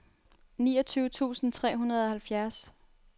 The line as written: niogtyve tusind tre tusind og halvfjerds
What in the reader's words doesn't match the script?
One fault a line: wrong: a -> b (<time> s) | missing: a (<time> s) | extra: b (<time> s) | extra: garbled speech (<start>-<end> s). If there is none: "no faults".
wrong: tusind -> hundrede (1.8 s)